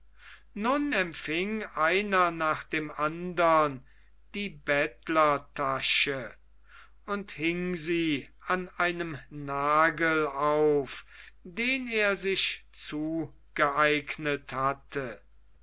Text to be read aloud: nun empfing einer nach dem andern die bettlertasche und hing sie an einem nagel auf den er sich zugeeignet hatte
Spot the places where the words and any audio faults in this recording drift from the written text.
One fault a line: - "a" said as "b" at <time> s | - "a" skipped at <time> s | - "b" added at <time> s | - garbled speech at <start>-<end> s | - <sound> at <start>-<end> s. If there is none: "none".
none